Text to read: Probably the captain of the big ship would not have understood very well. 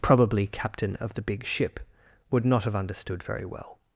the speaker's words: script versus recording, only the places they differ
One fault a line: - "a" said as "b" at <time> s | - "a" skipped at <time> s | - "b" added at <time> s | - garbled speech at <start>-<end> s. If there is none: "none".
- "the" skipped at 0.5 s